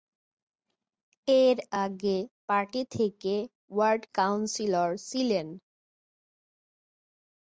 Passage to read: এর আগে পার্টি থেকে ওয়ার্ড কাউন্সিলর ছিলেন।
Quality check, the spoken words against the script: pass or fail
pass